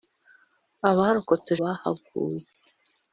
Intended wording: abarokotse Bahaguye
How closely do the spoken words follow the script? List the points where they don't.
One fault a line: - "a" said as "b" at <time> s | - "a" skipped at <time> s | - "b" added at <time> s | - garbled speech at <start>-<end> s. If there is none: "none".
none